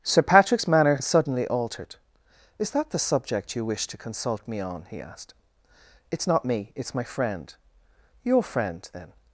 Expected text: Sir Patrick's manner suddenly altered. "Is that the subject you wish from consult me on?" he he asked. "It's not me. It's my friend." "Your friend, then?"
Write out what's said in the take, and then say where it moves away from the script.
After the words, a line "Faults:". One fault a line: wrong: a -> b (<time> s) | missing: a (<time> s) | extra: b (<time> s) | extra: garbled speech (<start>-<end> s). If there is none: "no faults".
Sir Patrick's manner suddenly altered. "Is that the subject you wish to consult me on?" he asked. "It's not me. It's my friend." "Your friend, then?"
Faults:
wrong: from -> to (3.9 s)
missing: he (5.0 s)